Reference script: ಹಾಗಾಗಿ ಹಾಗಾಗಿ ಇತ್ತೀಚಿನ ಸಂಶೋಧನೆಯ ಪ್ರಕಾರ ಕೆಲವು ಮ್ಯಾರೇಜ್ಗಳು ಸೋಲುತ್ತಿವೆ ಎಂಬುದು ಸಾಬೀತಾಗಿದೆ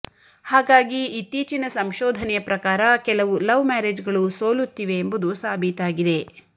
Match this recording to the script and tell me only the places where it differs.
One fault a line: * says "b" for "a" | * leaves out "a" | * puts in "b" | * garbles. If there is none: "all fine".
* leaves out "ಹಾಗಾಗಿ"
* puts in "ಲವ್"